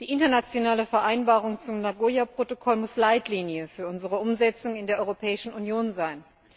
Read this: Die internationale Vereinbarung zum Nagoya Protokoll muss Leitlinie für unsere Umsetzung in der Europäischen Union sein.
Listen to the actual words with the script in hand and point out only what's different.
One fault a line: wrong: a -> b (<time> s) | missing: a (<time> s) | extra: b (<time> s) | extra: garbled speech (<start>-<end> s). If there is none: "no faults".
no faults